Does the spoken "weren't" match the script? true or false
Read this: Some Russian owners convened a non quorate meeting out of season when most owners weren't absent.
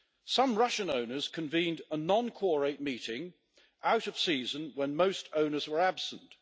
false